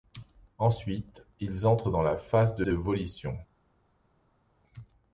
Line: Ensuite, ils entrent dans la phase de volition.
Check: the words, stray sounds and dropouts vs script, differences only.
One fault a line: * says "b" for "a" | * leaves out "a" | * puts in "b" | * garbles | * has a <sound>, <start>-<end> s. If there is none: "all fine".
* puts in "de"